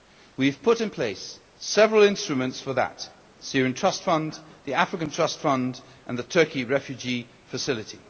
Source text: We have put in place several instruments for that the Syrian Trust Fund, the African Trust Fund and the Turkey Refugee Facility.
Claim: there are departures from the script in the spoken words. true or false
false